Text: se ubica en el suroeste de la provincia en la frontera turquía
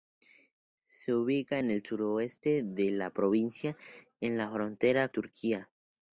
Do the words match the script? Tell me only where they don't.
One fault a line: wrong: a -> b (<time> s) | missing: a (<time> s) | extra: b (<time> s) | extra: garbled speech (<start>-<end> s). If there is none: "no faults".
no faults